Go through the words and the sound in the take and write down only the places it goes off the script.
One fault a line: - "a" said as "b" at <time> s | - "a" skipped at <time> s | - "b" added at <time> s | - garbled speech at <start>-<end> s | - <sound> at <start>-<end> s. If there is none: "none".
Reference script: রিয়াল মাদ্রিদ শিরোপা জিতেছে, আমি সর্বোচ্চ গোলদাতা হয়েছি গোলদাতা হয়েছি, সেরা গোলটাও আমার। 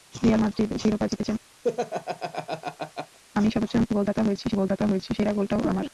- laugh at 1.6-3.2 s